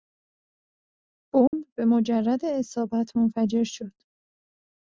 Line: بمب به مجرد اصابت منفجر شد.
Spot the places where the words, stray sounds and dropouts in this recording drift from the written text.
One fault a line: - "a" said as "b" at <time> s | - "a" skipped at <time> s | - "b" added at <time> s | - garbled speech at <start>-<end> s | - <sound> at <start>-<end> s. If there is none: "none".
- dropout at 1.5-1.5 s